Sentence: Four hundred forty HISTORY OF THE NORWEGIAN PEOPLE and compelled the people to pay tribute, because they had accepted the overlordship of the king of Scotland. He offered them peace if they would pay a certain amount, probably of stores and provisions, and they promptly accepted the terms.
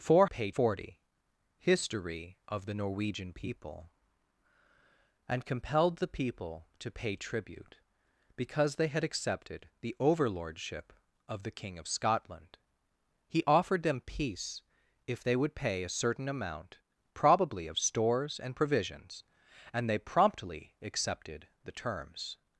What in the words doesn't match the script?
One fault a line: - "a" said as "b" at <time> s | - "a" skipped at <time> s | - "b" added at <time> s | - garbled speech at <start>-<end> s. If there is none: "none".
- "hundred" said as "pay" at 0.2 s